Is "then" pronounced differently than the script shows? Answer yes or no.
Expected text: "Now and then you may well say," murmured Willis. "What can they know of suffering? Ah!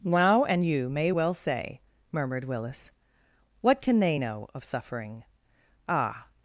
yes